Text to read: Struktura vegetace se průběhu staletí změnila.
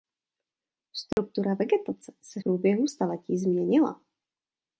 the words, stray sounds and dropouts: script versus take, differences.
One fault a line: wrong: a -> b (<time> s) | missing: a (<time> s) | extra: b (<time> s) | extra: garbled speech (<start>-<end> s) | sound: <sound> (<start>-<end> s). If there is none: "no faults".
sound: dropout (1.1-1.2 s)